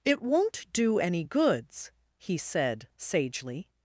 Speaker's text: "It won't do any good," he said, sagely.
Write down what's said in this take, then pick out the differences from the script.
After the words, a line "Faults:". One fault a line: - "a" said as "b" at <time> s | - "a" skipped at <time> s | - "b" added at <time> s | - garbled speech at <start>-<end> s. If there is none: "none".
"It won't do any goods," he said, sagely.
Faults:
- "good" said as "goods" at 1.2 s